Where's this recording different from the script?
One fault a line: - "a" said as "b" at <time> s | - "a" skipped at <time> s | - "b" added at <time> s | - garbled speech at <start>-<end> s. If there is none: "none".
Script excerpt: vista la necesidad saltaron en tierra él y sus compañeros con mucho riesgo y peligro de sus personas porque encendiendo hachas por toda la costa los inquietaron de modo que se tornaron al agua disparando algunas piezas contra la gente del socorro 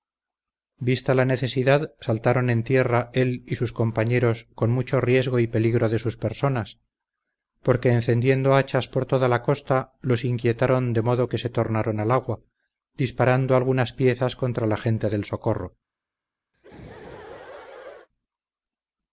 none